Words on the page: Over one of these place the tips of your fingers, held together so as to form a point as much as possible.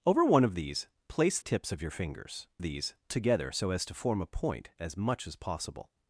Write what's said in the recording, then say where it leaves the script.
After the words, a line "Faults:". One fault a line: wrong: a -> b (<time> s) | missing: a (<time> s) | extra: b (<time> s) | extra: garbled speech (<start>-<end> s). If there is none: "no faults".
Over one of these place tips of your fingers, these together so as to form a point as much as possible.
Faults:
missing: the (1.4 s)
wrong: held -> these (2.6 s)